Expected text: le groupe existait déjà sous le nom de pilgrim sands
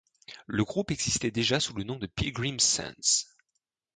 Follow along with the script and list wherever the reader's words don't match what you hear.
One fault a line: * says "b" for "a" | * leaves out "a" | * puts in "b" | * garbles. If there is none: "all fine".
all fine